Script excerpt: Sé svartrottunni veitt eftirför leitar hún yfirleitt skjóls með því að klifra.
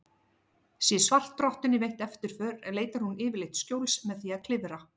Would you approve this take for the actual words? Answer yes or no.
yes